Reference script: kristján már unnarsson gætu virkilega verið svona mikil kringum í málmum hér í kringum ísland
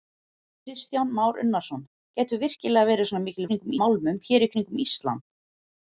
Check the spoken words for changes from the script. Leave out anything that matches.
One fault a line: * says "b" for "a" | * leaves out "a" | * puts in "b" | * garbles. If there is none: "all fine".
all fine